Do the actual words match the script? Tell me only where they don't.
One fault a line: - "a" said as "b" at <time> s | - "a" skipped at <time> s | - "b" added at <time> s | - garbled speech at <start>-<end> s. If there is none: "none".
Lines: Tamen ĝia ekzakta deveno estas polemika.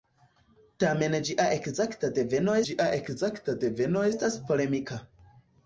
- "ĝia ekzakta deveno" added at 2.7 s